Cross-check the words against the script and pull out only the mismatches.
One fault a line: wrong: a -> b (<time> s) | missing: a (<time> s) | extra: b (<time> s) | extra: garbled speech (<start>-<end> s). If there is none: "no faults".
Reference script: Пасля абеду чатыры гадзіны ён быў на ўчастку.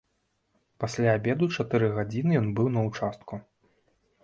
no faults